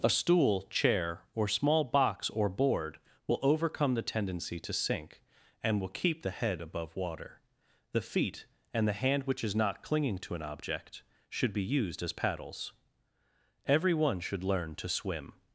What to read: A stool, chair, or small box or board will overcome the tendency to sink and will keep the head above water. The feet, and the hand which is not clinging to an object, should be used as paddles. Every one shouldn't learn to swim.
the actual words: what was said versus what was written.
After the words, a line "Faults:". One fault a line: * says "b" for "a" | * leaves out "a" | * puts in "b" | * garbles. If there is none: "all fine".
A stool, chair, or small box or board will overcome the tendency to sink and will keep the head above water. The feet, and the hand which is not clinging to an object, should be used as paddles. Every one should learn to swim.
Faults:
* says "should" for "shouldn't"